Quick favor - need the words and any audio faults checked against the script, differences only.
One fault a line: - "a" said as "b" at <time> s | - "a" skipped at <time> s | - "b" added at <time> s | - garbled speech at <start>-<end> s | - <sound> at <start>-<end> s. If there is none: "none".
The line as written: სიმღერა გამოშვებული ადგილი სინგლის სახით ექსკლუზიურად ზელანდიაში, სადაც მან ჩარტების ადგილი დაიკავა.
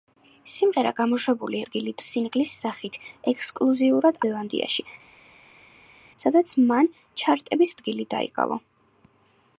none